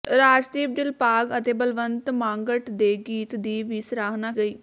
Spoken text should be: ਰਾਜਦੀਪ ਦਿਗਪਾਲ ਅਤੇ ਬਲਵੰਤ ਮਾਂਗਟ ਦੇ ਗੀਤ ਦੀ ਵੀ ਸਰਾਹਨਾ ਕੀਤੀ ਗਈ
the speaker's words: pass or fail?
fail